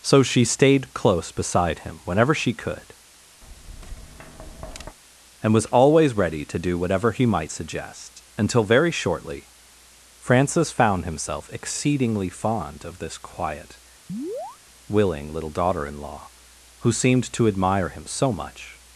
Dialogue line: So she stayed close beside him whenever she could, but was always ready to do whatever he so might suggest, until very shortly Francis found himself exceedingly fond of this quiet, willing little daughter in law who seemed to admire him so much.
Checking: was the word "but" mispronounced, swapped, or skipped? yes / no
yes